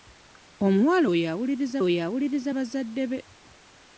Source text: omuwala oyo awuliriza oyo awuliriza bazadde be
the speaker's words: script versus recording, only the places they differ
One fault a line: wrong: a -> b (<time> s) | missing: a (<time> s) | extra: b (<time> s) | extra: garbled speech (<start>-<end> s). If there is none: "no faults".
no faults